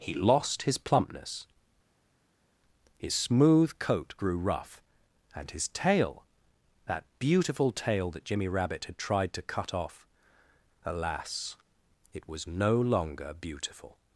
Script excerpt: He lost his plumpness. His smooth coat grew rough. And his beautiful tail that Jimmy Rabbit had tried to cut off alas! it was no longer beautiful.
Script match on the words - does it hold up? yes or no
no